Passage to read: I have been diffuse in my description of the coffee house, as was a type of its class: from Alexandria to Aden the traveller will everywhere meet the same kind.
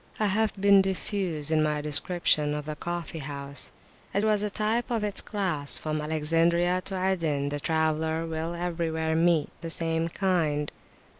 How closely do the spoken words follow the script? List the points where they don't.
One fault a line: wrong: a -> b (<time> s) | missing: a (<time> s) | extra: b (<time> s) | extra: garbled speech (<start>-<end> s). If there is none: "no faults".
no faults